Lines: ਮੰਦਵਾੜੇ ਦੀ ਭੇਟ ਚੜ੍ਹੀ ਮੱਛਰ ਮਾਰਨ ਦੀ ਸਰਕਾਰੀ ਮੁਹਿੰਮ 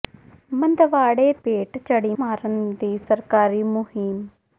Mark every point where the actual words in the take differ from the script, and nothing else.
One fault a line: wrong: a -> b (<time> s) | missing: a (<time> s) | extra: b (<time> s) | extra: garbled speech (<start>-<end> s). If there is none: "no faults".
missing: ਦੀ (1.3 s)
missing: ਮੱਛਰ (2.1 s)